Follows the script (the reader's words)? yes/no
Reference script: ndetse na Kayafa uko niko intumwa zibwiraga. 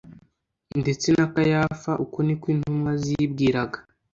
yes